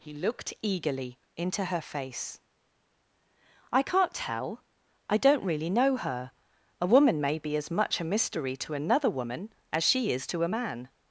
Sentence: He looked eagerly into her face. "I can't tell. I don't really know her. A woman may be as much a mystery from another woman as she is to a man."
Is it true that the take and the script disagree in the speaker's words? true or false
true